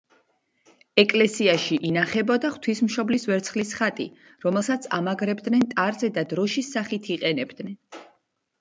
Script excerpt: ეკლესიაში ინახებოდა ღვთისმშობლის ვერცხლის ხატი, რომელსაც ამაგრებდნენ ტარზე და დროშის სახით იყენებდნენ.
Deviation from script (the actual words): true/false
false